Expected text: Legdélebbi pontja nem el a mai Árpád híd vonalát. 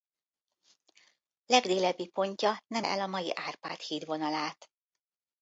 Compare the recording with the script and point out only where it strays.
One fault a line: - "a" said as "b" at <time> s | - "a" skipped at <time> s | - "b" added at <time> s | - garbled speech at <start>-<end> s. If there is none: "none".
none